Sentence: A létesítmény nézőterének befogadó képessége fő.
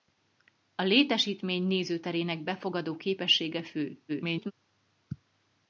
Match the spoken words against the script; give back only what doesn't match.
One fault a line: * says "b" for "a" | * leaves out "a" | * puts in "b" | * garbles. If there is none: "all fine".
* garbles